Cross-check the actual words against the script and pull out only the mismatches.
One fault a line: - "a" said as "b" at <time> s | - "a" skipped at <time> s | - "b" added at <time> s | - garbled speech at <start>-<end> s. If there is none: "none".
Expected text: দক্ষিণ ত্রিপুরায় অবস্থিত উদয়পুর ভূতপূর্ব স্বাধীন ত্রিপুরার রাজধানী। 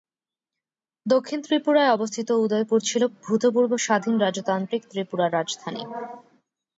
- "ছিল" added at 2.8 s
- "রাজতান্ত্রিক" added at 4.2 s